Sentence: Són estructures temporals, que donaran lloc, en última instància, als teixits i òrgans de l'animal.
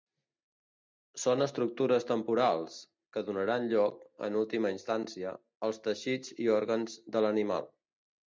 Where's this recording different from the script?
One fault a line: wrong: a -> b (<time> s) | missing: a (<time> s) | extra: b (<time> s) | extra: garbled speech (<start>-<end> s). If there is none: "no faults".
no faults